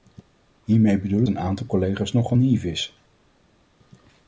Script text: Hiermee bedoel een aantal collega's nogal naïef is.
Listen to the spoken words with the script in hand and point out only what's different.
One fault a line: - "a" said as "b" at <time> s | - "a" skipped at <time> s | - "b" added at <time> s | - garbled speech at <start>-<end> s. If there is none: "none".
none